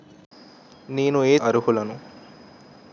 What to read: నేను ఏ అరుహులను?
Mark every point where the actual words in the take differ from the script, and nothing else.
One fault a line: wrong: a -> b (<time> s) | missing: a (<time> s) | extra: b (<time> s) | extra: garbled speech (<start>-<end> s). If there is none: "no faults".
no faults